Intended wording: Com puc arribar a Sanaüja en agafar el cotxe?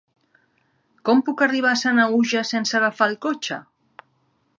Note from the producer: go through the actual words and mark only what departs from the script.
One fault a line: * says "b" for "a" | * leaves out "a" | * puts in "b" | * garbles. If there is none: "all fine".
* says "sense" for "en"